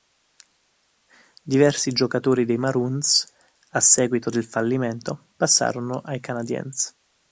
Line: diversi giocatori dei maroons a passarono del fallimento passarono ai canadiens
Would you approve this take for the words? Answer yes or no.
no